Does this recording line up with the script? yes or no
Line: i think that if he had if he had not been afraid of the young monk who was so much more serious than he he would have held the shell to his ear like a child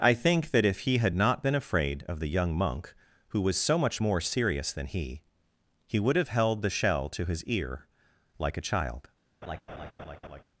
no